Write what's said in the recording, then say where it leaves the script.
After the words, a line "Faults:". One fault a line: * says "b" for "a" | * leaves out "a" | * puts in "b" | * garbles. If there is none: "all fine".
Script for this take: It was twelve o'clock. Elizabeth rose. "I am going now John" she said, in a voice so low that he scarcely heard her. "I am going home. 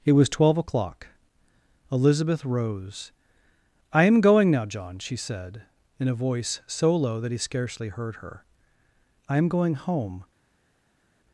It was twelve o'clock. Elizabeth rose. "I am going now John" she said, in a voice so low that he scarcely heard her. "I am going home.
Faults:
all fine